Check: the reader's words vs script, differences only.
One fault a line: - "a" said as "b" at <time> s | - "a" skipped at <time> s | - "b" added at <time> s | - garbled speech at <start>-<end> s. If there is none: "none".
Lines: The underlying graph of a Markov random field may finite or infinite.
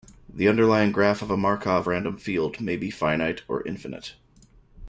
- "be" added at 2.8 s